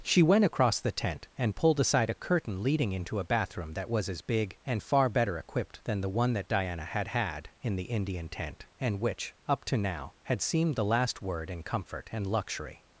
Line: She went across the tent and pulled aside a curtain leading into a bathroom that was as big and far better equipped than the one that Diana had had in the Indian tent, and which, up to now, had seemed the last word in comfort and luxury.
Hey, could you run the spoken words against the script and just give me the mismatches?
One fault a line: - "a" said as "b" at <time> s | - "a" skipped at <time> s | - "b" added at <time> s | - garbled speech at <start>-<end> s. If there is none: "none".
none